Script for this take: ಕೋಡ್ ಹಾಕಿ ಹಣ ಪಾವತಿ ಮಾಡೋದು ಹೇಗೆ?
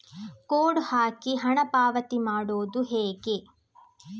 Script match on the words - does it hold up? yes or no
yes